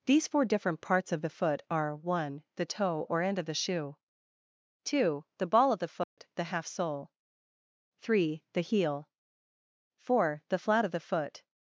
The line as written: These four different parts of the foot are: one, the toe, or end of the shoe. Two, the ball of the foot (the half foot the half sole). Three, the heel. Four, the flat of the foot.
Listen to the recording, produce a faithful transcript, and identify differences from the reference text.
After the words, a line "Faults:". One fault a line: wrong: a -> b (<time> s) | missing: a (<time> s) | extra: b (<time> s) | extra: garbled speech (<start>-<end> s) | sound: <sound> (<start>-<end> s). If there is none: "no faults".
These four different parts of the foot are: one, the toe, or end of the shoe. Two, the ball of the foot (the half sole). Three, the heel. Four, the flat of the foot.
Faults:
sound: dropout (6.0-6.2 s)
missing: foot the half (6.7 s)